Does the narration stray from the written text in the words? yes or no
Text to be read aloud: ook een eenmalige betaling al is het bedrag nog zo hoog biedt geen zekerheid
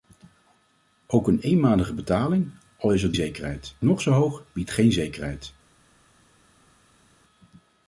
yes